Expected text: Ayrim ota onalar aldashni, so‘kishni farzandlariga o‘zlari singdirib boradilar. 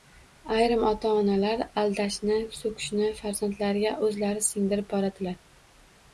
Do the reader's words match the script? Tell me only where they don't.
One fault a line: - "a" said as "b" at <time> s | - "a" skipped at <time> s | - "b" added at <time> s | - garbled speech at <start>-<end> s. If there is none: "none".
none